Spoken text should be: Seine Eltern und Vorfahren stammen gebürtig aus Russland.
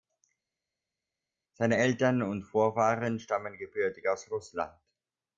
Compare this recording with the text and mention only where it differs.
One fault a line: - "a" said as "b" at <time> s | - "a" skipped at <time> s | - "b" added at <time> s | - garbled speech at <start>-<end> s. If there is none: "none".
none